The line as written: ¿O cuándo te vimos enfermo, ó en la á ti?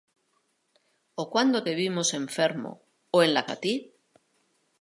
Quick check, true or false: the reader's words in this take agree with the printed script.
true